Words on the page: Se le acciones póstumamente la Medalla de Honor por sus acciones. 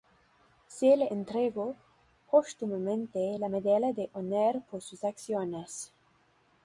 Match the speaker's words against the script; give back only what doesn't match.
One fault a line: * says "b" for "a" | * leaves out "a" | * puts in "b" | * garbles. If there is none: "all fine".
* says "entregó" for "acciones"